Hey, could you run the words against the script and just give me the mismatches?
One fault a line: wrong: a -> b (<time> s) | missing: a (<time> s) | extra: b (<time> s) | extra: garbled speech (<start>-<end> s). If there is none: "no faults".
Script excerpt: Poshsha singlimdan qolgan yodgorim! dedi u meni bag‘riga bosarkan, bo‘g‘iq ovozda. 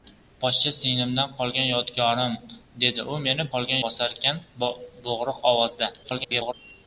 wrong: bag‘riga -> qolgan (3.6 s)
extra: garbled speech (6.0-6.5 s)